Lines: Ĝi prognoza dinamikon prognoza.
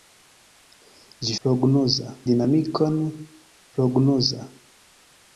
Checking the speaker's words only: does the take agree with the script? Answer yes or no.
yes